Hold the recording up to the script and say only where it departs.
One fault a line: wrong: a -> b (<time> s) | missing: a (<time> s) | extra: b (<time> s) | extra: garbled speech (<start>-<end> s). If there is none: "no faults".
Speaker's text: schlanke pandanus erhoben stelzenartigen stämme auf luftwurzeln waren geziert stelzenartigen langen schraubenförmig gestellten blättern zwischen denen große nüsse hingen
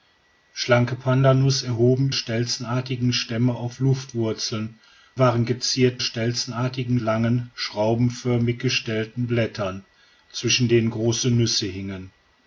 no faults